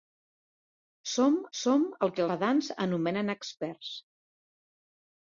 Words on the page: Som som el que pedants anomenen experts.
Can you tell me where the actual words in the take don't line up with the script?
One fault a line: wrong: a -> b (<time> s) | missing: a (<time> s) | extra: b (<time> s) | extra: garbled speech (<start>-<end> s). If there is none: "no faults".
no faults